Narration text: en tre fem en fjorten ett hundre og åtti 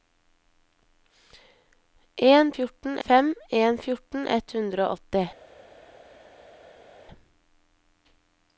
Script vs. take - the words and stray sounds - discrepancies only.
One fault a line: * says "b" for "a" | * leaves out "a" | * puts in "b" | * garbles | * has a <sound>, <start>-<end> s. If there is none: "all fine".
* says "fjorten" for "tre"